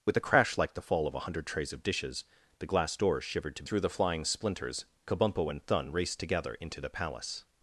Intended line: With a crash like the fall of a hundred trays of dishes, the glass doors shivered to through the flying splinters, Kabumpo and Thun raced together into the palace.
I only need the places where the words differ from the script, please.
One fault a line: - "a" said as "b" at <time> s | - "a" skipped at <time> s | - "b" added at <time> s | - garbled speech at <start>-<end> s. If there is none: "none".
none